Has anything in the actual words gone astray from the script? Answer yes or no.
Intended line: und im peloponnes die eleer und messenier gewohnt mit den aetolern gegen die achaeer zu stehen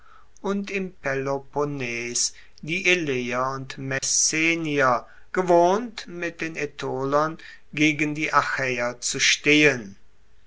no